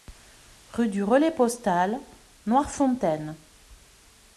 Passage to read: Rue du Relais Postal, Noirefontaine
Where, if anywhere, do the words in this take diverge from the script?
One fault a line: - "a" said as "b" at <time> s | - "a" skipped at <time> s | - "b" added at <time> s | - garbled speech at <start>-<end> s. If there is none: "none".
none